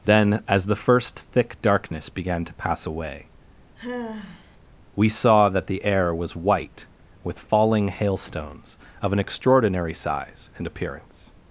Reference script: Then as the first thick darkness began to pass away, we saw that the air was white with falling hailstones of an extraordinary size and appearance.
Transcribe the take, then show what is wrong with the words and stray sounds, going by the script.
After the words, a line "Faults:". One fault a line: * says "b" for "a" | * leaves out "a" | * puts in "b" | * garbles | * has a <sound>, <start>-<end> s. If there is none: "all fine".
Then as the first thick darkness began to pass away, we saw that the air was white with falling hailstones of an extraordinary size and appearance.
Faults:
* has a sigh, 3.8-4.6 s